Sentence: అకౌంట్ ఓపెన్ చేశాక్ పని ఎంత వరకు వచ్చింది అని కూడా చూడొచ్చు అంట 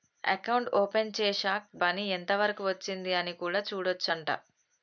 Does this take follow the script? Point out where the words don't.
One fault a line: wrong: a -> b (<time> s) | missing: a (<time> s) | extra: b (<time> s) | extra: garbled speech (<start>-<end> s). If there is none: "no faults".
no faults